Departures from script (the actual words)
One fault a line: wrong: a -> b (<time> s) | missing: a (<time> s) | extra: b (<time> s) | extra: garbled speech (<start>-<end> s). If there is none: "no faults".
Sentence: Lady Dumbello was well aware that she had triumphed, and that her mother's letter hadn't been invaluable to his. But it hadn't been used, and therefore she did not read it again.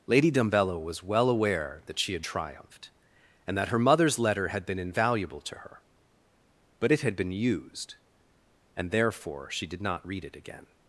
wrong: hadn't -> had (4.5 s)
wrong: his -> her (5.6 s)
wrong: hadn't -> had (7.0 s)